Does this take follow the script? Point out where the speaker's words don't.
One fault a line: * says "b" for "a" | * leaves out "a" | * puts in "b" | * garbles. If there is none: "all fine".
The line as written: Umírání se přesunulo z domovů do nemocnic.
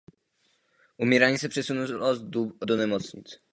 * leaves out "z domovů"